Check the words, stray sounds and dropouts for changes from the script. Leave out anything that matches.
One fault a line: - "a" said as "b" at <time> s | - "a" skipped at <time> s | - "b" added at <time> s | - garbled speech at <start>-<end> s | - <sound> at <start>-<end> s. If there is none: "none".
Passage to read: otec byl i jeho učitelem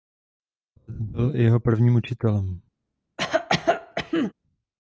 - "prvním" added at 1.6 s
- cough at 3.2-4.3 s